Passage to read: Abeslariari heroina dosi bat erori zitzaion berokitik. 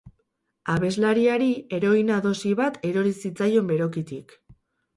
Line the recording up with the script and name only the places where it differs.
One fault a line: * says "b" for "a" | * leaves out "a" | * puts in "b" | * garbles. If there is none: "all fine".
all fine